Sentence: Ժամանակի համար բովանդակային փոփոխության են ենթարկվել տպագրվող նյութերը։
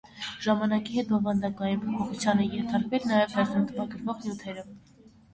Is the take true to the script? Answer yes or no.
no